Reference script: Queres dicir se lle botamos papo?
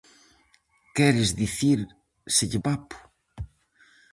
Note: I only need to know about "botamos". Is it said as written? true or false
false